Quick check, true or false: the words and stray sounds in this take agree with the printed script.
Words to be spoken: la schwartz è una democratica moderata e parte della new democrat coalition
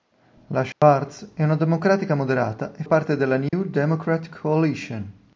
false